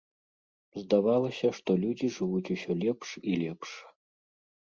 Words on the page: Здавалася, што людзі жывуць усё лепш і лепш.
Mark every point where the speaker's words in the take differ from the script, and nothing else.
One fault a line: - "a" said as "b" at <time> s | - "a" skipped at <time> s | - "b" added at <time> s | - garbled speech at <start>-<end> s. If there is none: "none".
none